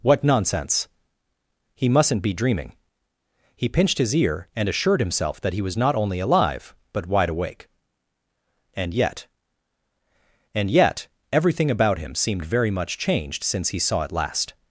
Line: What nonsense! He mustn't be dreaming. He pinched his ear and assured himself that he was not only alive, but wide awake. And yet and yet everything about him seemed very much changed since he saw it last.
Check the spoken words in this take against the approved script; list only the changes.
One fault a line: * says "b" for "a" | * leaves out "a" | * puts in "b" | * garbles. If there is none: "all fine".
all fine